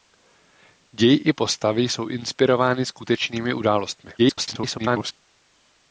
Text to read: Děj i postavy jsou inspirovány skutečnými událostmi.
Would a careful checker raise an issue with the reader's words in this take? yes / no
yes